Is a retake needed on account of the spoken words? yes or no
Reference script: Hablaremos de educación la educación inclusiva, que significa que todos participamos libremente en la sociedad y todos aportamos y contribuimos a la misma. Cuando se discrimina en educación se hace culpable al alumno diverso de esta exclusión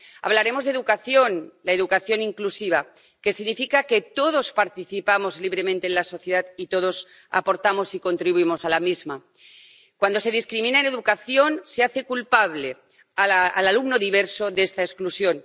no